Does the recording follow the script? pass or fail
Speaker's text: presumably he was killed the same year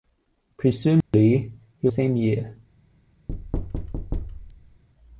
fail